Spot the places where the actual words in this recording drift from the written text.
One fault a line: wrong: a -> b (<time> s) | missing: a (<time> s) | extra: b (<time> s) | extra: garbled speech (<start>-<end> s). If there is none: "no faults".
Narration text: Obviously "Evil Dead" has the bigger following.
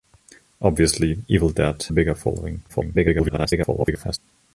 missing: has the (1.8 s)
extra: garbled speech (2.7-4.2 s)